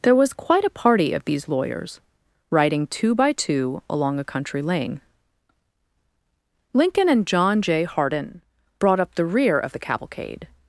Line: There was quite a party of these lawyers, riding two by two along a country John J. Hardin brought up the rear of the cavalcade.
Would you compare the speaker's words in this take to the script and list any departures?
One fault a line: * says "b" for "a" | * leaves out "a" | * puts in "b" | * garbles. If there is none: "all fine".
* puts in "lane Lincoln and"